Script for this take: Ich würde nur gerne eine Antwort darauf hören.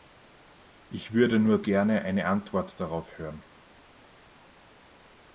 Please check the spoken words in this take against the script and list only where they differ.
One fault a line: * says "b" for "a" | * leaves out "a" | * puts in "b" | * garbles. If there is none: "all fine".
all fine